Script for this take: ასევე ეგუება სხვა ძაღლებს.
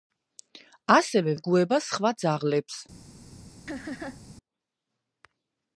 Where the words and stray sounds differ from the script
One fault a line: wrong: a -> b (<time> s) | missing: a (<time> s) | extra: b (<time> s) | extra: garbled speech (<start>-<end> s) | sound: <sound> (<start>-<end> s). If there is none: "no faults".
sound: laugh (3.7-4.2 s)